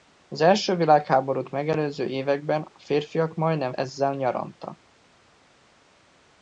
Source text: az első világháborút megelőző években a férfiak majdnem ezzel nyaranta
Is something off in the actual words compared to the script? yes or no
no